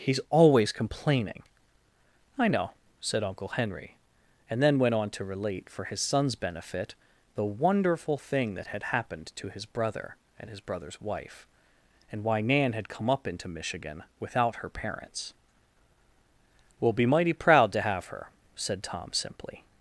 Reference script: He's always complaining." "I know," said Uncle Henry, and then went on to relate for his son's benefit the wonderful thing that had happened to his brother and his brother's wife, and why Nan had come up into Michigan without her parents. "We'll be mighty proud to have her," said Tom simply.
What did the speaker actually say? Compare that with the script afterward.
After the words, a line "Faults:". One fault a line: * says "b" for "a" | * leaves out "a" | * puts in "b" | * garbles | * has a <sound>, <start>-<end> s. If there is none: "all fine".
He's always complaining." "I know," said Uncle Henry, and then went on to relate for his son's benefit the wonderful thing that had happened to his brother and his brother's wife, and why Nan had come up into Michigan without her parents. "We'll be mighty proud to have her," said Tom simply.
Faults:
all fine